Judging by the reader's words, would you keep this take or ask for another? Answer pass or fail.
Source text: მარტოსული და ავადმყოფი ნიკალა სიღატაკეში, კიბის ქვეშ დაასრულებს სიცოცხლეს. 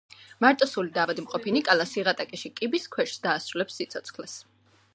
pass